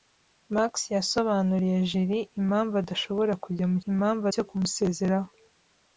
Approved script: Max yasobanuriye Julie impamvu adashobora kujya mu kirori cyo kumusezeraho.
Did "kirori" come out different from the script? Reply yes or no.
yes